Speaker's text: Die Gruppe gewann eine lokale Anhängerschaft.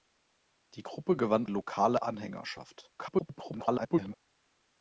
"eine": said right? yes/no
no